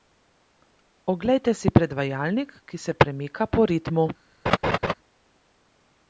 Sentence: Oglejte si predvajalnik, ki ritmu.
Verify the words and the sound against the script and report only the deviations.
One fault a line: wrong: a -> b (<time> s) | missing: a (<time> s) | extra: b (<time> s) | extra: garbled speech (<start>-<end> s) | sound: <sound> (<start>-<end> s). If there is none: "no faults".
extra: se premika po (2.8 s)
sound: laugh (4.5-4.9 s)